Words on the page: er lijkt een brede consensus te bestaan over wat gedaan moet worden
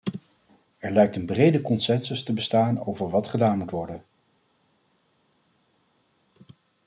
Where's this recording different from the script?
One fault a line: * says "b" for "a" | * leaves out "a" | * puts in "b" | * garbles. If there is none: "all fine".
all fine